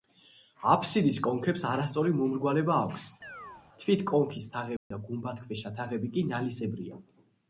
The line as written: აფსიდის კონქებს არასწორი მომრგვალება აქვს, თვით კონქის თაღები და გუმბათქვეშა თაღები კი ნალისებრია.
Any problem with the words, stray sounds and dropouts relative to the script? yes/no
yes